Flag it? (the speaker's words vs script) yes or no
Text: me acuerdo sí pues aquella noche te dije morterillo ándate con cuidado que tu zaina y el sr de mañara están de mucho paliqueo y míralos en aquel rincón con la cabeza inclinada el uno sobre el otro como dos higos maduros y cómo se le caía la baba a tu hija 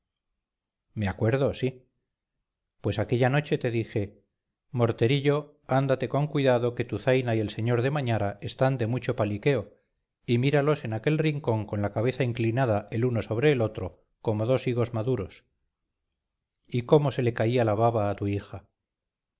no